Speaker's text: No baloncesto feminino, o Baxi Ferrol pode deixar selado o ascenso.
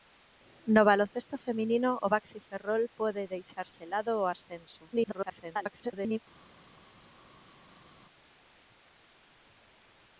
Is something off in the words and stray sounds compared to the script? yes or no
yes